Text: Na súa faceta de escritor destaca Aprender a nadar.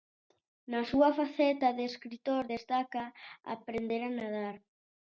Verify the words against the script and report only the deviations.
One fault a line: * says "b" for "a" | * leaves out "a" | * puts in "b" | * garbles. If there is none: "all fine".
all fine